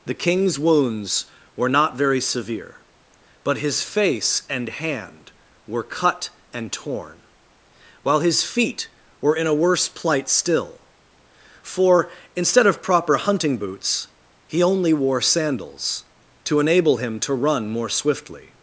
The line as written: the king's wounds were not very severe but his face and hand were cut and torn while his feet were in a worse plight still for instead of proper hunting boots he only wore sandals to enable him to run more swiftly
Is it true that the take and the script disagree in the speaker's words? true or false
false